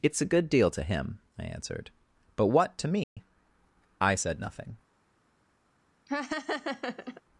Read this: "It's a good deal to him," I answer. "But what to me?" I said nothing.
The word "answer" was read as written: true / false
false